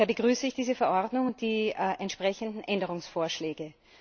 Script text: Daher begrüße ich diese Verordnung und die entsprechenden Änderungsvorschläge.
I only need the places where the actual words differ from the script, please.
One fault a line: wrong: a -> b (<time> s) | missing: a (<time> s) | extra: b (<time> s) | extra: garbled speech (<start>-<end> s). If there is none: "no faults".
no faults